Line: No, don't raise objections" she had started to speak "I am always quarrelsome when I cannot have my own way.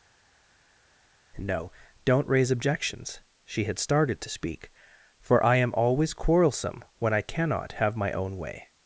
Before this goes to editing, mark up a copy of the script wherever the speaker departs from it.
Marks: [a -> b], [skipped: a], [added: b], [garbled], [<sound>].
No, don't raise objections" she had started to speak [added: for] "I am always quarrelsome when I cannot have my own way.